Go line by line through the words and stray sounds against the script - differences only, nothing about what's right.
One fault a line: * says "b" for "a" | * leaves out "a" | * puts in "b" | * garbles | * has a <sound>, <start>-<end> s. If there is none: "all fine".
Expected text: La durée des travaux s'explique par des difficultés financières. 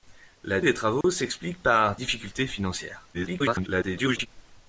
* leaves out "durée"
* has a dropout, 1.0-1.0 s
* leaves out "des"
* garbles